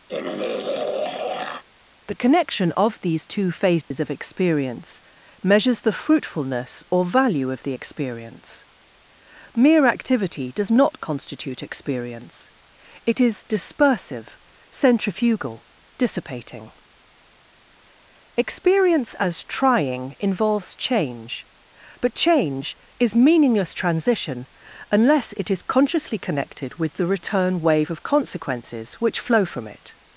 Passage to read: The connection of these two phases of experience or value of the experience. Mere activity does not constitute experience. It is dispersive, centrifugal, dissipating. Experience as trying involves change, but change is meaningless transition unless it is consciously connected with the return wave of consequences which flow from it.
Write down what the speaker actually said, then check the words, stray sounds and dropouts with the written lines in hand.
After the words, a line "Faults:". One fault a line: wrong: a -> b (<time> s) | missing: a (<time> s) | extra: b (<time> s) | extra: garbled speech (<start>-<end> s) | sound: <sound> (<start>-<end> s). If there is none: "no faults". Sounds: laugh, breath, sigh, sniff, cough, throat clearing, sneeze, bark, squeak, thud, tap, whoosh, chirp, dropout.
The connection of these two phases of experience measures the fruitfulness or value of the experience. Mere activity does not constitute experience. It is dispersive, centrifugal, dissipating. Experience as trying involves change, but change is meaningless transition unless it is consciously connected with the return wave of consequences which flow from it.
Faults:
sound: throat clearing (0.1-1.6 s)
sound: dropout (3.8-3.9 s)
extra: measures the fruitfulness (5.4 s)